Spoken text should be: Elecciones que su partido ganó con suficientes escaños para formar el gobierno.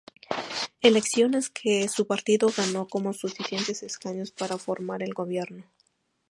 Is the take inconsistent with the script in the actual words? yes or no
no